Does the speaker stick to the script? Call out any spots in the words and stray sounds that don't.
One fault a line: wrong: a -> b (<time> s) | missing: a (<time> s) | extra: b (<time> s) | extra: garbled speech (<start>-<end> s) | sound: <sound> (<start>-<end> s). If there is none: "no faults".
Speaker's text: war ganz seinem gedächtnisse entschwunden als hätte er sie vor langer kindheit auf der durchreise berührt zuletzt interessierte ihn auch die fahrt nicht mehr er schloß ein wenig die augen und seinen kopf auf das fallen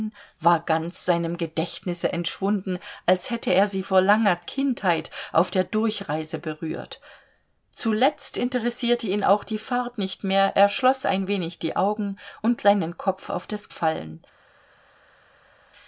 no faults